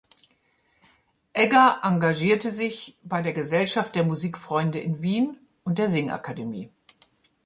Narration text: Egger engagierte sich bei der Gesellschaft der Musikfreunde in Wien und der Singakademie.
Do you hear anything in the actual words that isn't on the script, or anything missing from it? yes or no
no